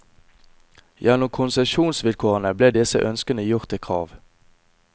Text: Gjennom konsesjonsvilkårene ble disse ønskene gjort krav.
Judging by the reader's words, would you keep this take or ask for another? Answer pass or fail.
fail